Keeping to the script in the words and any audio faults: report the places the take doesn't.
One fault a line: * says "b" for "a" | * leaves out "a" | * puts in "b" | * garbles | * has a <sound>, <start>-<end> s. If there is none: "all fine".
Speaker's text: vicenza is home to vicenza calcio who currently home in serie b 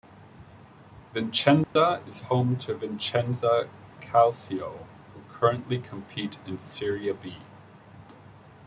* has a dropout, 1.6-1.8 s
* says "compete" for "home"